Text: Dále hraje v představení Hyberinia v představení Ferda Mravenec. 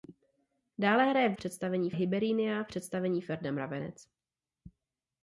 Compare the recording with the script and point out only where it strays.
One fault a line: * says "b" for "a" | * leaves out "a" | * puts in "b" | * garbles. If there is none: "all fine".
all fine